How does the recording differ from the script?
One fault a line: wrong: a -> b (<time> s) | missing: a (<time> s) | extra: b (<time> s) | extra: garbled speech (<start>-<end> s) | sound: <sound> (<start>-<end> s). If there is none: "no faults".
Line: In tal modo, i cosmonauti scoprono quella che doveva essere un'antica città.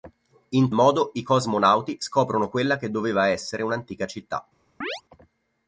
missing: tal (0.7 s)
sound: chirp (4.8-5.0 s)